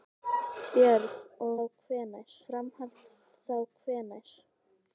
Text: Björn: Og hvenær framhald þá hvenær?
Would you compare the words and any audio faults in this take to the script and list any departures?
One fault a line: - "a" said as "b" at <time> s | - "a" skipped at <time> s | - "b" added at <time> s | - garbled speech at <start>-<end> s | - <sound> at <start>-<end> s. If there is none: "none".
none